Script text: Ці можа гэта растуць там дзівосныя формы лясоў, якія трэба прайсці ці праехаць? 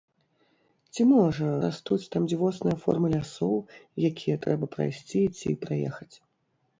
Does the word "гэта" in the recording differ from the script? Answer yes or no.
yes